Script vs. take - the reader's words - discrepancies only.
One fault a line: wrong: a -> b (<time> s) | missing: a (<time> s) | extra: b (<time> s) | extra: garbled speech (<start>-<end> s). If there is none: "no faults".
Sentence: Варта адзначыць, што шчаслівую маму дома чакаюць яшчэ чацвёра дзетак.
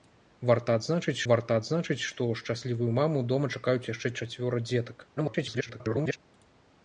extra: варта адзначыць (1.3 s)
extra: garbled speech (5.2-6.2 s)